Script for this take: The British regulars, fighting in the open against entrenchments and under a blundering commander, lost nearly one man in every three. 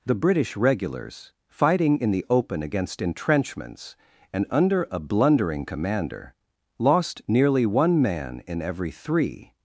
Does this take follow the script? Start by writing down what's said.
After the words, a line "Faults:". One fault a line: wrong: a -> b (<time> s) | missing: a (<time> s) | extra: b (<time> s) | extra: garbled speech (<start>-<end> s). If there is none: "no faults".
The British regulars, fighting in the open against entrenchments and under a blundering commander, lost nearly one man in every three.
Faults:
no faults